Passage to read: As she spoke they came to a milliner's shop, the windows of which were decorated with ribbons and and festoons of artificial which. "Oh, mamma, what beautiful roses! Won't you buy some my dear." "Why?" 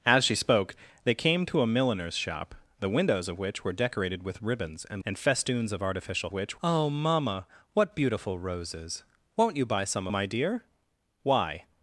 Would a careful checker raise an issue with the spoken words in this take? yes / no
no